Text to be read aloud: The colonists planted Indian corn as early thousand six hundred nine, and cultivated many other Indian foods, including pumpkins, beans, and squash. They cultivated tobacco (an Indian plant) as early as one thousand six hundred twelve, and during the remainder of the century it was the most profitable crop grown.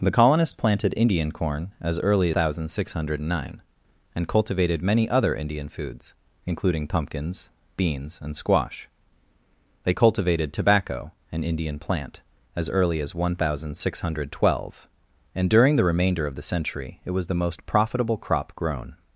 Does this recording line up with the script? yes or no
yes